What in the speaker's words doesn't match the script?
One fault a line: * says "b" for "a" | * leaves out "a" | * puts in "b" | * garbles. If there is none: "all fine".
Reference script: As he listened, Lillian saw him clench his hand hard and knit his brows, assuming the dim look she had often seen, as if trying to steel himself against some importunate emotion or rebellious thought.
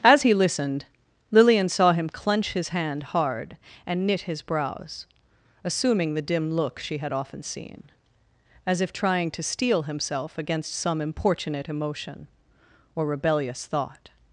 all fine